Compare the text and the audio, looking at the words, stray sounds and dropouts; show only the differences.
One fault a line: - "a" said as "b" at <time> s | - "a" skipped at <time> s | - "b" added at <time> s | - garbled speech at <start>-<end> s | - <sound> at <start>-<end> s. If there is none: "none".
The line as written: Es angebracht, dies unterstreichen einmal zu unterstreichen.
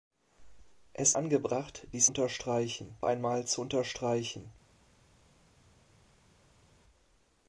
none